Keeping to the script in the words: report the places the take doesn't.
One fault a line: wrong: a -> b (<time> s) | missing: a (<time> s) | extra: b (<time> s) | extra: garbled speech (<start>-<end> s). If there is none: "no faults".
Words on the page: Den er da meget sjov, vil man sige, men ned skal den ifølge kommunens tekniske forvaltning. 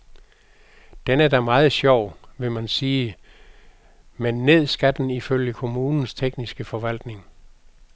no faults